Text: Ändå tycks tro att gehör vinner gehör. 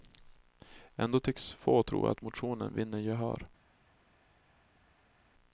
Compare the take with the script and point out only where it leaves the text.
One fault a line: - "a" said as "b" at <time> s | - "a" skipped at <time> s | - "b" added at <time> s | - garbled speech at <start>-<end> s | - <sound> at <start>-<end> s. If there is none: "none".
- "få" added at 1.5 s
- "gehör" said as "motionen" at 2.2 s